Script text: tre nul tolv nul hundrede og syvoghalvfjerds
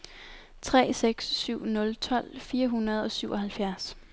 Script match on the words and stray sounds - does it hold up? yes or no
no